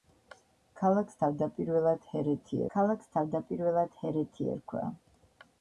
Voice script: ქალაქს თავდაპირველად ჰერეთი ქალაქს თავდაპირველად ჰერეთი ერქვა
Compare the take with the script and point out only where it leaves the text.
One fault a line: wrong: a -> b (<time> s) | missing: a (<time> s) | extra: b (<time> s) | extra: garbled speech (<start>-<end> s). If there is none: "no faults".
no faults